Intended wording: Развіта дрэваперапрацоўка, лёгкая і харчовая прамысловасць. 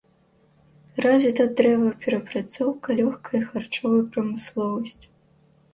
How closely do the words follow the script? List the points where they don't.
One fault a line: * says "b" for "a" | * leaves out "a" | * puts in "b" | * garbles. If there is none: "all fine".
all fine